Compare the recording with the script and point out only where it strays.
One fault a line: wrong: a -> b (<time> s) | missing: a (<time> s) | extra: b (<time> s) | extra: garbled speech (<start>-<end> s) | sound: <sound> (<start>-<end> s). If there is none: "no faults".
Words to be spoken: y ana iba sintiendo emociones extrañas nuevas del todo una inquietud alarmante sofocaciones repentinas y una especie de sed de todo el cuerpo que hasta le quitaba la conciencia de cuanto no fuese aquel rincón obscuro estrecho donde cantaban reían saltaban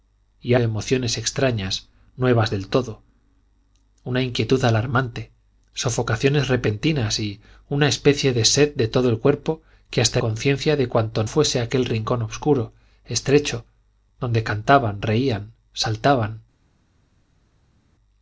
missing: ana iba sintiendo (0.6 s)
missing: le quitaba la (10.2 s)
missing: no (11.2 s)